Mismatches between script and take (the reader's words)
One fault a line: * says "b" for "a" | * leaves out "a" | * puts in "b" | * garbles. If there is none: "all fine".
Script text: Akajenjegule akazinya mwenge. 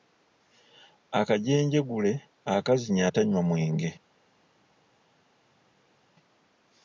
* puts in "atanywa"